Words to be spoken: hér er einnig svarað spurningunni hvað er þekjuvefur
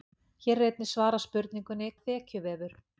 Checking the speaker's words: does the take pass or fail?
fail